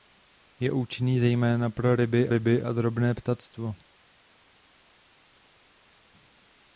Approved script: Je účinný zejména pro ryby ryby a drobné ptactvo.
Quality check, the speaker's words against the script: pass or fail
pass